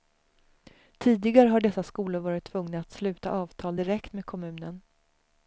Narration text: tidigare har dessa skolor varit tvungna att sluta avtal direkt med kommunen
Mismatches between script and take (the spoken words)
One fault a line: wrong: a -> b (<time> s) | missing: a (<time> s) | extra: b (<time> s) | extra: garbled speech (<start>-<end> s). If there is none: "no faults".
no faults